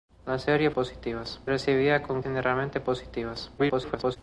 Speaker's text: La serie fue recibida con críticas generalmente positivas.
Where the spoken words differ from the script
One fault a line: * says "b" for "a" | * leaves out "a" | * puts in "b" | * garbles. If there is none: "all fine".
* says "positivas" for "fue"
* leaves out "críticas"
* garbles